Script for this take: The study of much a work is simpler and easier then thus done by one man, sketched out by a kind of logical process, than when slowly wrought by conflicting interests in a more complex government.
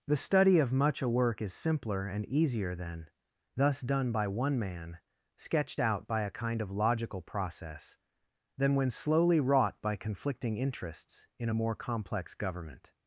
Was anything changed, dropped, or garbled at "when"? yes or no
no